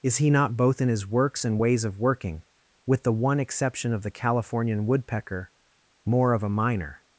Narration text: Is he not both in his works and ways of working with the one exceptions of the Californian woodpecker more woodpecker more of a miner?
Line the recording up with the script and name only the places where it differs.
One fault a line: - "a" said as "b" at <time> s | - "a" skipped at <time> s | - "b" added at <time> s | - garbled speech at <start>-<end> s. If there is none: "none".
- "exceptions" said as "exception" at 3.4 s
- "woodpecker more" skipped at 6.3 s